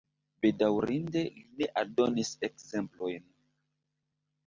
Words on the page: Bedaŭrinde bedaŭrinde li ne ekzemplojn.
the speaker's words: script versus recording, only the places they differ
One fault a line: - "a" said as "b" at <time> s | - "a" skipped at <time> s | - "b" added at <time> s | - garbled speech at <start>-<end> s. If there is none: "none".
- "bedaŭrinde" skipped at 1.2 s
- "aldonis" added at 1.8 s